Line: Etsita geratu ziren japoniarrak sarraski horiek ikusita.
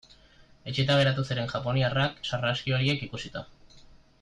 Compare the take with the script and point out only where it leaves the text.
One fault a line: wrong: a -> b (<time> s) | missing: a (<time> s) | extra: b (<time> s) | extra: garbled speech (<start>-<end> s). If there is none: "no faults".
no faults